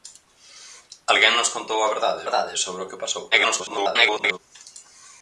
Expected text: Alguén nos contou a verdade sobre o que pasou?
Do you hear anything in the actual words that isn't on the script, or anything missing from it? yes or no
yes